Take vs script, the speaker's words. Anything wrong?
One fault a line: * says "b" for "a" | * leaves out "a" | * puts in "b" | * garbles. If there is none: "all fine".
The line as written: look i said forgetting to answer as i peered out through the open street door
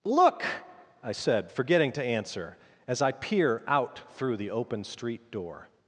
* says "peer" for "peered"